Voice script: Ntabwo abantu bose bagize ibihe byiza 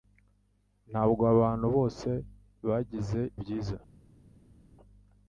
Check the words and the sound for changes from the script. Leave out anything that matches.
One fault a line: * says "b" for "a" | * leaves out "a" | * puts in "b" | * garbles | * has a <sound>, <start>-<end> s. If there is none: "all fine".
* leaves out "ibihe"